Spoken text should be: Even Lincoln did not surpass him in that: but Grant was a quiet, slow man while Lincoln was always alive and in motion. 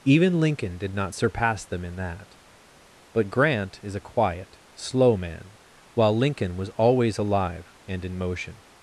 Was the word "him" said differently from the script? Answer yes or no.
yes